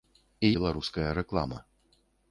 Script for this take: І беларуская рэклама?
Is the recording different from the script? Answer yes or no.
no